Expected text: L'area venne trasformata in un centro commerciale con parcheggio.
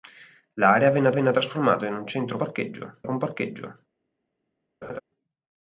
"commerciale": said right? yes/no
no